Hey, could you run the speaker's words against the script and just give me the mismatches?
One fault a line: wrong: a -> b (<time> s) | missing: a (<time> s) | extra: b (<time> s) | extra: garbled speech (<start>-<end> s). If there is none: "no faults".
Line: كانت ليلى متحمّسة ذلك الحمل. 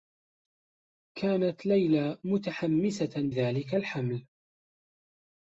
no faults